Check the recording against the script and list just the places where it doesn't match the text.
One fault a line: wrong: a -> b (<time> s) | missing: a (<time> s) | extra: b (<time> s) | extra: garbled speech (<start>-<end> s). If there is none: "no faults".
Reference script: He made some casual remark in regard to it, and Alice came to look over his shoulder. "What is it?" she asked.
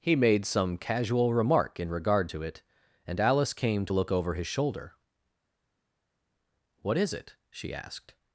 no faults